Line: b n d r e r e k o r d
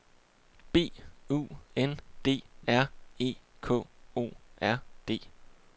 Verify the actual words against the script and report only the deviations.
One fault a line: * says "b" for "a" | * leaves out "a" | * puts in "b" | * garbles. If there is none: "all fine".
* puts in "u"
* leaves out "r e"